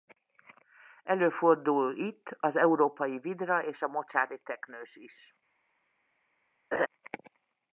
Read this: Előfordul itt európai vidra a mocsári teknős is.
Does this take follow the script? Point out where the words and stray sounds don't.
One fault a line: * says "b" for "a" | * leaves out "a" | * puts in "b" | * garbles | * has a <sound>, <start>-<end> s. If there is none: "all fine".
* puts in "az"
* puts in "és"
* has a laugh, 6.7-6.9 s